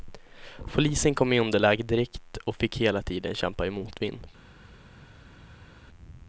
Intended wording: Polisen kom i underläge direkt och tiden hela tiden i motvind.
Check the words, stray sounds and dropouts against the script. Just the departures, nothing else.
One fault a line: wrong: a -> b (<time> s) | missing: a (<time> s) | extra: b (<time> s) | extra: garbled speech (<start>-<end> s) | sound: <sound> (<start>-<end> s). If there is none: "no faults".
wrong: tiden -> fick (2.5 s)
extra: kämpa (3.4 s)